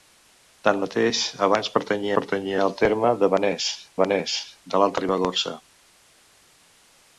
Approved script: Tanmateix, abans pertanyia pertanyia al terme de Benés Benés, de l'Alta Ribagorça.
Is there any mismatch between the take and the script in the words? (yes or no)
no